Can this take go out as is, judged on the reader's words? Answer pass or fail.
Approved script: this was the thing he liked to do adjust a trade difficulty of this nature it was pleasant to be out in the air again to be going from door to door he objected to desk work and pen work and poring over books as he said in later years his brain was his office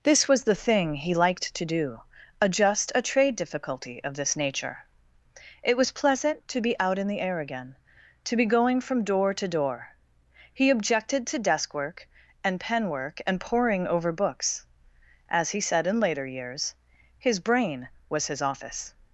pass